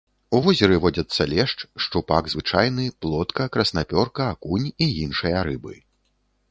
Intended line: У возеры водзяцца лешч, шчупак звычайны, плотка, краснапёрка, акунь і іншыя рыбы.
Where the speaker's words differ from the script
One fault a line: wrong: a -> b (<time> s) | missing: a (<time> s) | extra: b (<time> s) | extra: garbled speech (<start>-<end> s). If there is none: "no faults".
no faults